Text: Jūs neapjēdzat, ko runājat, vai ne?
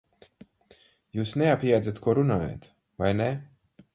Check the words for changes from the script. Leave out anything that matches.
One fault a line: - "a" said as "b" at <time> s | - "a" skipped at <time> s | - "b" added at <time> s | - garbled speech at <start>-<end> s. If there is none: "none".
none